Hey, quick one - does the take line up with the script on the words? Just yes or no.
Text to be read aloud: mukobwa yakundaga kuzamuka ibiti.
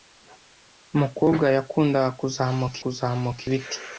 no